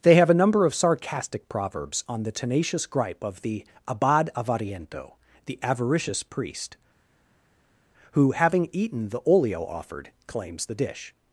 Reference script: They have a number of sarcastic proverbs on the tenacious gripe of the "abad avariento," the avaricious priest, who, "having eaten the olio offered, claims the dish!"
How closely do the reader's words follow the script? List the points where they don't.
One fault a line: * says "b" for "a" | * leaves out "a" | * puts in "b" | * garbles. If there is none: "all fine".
all fine